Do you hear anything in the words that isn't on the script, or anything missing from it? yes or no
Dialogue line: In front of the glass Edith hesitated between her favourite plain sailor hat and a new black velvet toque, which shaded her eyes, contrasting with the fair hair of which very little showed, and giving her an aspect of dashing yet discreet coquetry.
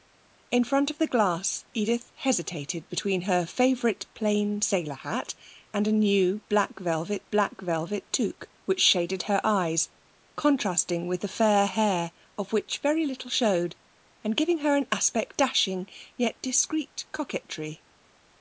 yes